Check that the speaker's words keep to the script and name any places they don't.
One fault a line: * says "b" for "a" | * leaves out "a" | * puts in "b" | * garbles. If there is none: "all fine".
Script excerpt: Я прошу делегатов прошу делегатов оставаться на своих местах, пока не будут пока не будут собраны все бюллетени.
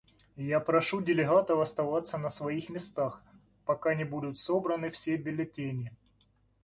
* leaves out "прошу делегатов"
* leaves out "пока не будут"